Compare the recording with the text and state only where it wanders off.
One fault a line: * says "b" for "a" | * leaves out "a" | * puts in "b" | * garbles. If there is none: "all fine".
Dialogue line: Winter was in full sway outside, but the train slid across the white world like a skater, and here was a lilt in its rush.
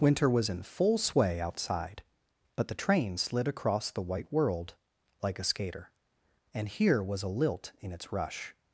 all fine